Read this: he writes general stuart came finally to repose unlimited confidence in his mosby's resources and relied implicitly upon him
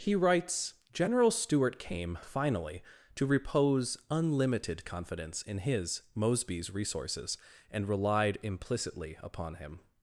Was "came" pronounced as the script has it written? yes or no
yes